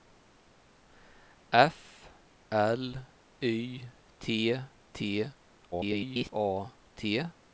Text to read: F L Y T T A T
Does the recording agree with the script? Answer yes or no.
no